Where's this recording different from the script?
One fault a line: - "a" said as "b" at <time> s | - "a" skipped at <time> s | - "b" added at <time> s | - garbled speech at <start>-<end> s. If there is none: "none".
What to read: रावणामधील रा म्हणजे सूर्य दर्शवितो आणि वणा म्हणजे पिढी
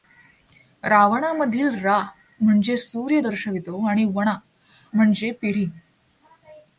none